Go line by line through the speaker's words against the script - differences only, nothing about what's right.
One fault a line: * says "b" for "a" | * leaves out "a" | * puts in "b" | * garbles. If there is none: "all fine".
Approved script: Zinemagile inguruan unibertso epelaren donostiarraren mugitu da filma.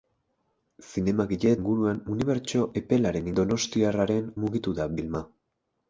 all fine